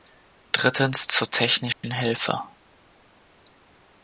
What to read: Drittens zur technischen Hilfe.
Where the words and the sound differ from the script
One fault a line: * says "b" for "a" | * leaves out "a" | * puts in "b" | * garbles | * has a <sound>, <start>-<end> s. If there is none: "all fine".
* has a dropout, 1.7-1.8 s